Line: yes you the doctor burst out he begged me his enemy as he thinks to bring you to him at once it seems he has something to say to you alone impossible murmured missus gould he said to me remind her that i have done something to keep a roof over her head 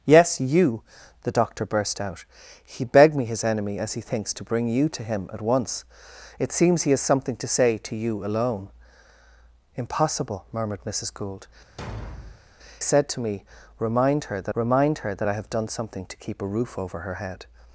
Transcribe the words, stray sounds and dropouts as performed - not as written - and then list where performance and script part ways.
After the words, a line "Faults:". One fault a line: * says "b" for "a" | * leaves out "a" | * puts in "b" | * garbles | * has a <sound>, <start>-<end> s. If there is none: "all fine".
yes you the doctor burst out he begged me his enemy as he thinks to bring you to him at once it seems he has something to say to you alone impossible murmured missus gould said to me remind her that remind her that i have done something to keep a roof over her head
Faults:
* leaves out "he"
* has a thud, 11.8-12.4 s
* puts in "remind her that"